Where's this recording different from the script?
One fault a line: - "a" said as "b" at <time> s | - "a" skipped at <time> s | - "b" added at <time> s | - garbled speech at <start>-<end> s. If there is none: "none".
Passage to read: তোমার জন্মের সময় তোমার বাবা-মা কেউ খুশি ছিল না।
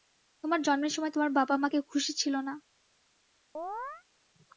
none